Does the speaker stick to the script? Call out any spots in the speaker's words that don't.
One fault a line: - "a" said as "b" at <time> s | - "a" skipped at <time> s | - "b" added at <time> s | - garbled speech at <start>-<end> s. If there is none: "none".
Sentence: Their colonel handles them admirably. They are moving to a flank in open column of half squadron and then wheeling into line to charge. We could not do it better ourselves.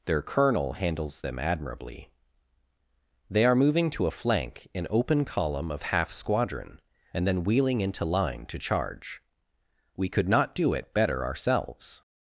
none